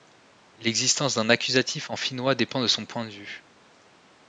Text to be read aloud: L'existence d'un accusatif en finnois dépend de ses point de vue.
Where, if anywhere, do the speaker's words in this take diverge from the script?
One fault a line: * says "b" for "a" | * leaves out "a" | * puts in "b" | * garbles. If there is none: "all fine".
* says "son" for "ses"